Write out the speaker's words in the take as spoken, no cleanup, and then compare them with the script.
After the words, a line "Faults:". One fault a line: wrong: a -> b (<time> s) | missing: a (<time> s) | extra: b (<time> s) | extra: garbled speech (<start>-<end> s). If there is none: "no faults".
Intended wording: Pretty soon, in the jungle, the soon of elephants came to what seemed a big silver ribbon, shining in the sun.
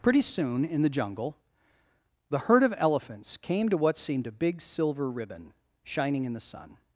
Pretty soon, in the jungle, the herd of elephants came to what seemed a big silver ribbon, shining in the sun.
Faults:
wrong: soon -> herd (2.4 s)